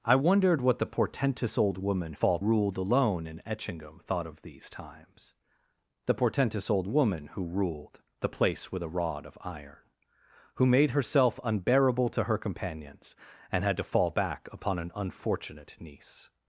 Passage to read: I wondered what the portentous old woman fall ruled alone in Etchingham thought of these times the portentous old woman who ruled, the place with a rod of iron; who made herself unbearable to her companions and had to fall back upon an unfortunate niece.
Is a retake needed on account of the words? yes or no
no